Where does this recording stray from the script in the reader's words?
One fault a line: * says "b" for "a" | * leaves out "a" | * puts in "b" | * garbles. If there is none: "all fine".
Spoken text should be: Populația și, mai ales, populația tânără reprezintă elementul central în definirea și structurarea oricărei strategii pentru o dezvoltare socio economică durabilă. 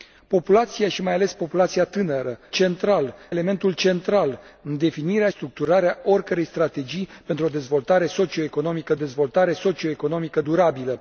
* says "central" for "reprezintă"
* leaves out "și"
* puts in "dezvoltare socio economică"